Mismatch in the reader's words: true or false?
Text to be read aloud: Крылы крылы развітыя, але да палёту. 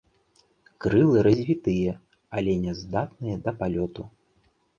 true